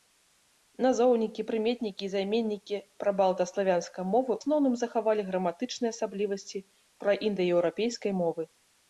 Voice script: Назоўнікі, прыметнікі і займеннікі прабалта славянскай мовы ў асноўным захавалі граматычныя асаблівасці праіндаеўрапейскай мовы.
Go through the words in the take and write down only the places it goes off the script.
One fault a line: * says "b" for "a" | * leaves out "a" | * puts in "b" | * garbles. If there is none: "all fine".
* leaves out "ў"